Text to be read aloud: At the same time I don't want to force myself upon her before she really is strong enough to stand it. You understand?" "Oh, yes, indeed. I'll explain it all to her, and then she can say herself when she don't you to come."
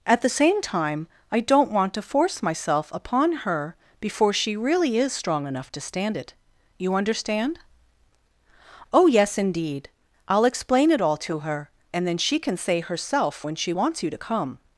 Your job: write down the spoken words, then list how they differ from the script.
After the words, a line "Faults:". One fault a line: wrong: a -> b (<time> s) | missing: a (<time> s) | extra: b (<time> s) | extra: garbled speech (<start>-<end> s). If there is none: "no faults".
At the same time I don't want to force myself upon her before she really is strong enough to stand it. You understand?" "Oh, yes, indeed. I'll explain it all to her, and then she can say herself when she wants you to come."
Faults:
wrong: don't -> wants (13.7 s)